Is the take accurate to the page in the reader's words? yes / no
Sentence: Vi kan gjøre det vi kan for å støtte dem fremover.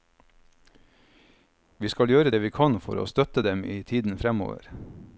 no